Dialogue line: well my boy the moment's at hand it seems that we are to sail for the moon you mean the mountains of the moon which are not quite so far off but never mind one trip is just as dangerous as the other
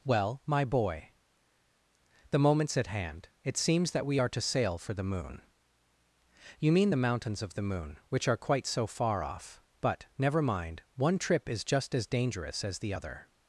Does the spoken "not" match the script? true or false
false